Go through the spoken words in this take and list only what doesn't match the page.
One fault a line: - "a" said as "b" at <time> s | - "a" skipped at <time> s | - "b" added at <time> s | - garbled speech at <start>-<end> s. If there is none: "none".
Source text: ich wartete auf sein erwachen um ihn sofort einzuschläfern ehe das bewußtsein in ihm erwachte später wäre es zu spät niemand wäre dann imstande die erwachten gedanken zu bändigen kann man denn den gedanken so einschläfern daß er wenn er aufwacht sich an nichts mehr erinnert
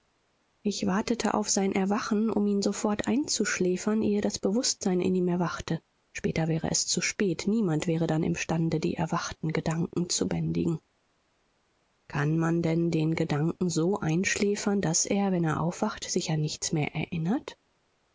none